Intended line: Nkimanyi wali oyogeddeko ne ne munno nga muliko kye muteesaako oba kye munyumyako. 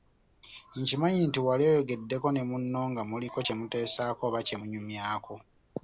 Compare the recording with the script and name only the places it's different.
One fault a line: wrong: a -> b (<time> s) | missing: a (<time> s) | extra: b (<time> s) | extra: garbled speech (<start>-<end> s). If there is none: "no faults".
extra: nti (1.3 s)
missing: ne (2.4 s)